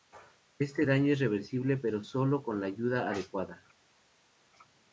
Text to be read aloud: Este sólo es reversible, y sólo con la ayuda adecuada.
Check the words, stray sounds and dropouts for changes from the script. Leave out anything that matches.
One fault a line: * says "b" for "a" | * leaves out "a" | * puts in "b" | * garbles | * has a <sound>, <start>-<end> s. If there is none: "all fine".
* says "daño" for "sólo"
* says "pero" for "y"